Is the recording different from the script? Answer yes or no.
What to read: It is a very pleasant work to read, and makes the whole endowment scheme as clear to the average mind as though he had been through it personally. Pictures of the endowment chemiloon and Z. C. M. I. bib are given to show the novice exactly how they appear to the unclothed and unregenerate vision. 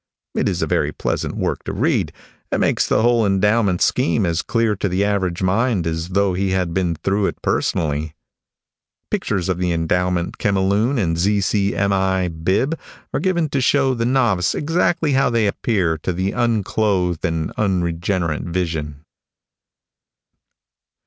no